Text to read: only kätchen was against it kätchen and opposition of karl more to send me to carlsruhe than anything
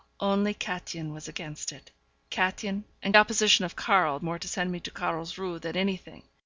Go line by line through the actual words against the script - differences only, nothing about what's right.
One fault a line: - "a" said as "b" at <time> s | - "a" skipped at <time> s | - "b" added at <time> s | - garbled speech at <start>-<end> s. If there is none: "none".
none